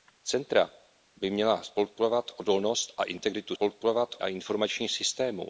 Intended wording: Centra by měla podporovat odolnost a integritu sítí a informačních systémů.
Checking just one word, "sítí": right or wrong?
wrong